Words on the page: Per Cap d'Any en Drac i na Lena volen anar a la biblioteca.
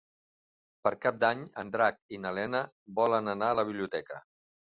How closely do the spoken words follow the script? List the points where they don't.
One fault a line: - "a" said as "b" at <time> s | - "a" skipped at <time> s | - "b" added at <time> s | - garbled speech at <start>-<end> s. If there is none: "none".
none